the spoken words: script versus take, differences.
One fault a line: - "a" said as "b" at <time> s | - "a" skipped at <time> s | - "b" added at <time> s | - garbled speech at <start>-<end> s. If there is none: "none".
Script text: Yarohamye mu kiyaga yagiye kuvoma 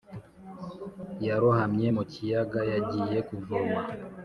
none